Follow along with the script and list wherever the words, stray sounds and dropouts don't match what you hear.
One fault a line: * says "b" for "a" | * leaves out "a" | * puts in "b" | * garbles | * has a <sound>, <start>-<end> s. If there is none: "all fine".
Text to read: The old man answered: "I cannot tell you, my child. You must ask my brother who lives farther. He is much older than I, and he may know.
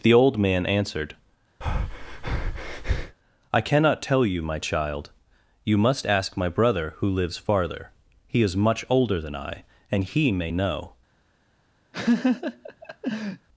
* has a breath, 1.6-3.2 s
* has a laugh, 11.9-13.5 s